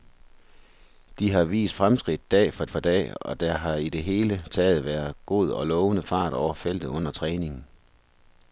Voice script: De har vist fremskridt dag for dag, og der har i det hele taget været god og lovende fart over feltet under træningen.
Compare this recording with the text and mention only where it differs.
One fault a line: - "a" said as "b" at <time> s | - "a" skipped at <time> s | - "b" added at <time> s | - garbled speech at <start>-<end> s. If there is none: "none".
- "for" added at 2.7 s